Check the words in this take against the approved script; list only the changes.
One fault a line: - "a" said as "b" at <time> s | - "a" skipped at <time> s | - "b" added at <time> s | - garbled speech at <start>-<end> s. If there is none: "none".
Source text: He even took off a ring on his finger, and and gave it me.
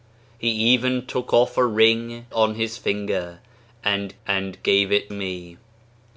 none